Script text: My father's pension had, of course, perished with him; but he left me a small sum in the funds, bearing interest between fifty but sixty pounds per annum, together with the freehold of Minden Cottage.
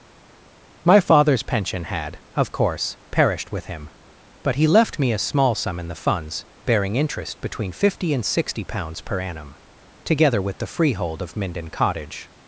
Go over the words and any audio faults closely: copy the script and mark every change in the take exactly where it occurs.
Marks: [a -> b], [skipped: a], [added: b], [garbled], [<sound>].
My father's pension had, of course, perished with him; but he left me a small sum in the funds, bearing interest between fifty [but -> and] sixty pounds per annum, together with the freehold of Minden Cottage.